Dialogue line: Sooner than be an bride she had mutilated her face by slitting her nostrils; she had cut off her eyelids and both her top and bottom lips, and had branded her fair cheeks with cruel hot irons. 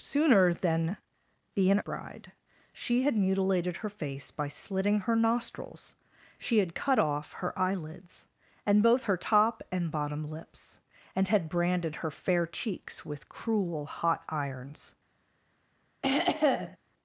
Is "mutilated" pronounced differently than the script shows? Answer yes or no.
no